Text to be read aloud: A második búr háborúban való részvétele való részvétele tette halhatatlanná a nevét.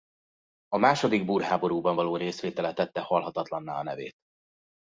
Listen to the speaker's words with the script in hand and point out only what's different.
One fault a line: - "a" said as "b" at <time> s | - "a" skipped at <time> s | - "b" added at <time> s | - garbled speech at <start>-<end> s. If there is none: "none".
- "való részvétele" skipped at 2.7 s